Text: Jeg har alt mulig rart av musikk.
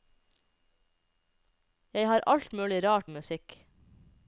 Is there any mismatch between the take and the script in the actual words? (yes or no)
yes